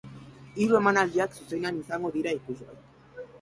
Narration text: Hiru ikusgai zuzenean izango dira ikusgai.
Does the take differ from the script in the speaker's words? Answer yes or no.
yes